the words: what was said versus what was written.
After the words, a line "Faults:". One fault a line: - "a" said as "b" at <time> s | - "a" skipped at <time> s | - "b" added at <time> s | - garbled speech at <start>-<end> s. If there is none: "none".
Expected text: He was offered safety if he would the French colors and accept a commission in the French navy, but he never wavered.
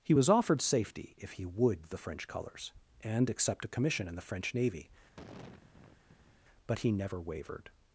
He was offered safety if he would the French colors and accept a commission in the French navy, but he never wavered.
Faults:
none